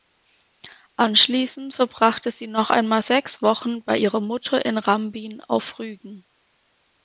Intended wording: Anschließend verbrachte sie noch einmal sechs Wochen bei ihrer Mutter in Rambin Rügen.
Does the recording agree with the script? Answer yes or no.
no